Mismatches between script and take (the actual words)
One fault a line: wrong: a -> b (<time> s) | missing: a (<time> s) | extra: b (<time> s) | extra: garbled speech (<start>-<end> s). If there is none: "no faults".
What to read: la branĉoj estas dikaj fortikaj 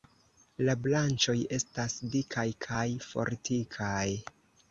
extra: kaj (2.7 s)